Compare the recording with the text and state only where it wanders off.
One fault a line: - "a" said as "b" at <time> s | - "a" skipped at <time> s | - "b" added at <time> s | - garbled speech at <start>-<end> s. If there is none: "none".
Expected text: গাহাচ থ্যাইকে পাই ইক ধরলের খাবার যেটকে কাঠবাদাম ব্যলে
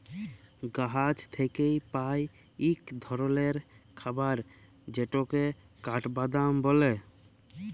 none